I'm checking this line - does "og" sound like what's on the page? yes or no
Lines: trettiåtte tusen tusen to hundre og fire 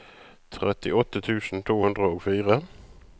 yes